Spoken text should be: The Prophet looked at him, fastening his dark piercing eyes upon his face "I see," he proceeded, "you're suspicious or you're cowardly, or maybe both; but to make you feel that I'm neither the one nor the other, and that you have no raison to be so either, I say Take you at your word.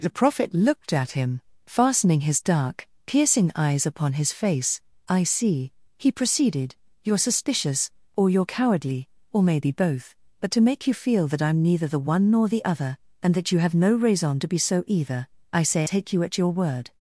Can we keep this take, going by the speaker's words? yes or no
yes